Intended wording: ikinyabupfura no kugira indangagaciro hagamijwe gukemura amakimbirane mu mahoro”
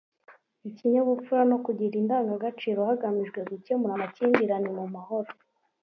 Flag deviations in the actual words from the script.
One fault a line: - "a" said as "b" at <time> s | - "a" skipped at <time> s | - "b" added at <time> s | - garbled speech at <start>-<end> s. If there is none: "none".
none